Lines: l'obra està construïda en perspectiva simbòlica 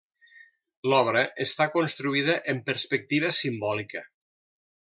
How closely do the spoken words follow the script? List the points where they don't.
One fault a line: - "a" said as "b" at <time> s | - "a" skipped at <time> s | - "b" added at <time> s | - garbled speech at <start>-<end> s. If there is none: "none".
none